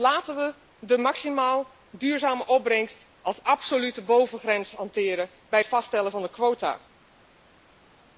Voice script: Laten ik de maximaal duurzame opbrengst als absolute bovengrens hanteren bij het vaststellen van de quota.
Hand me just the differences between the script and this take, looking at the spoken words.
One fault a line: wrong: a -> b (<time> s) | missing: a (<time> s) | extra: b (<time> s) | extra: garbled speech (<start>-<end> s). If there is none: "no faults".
wrong: ik -> we (0.3 s)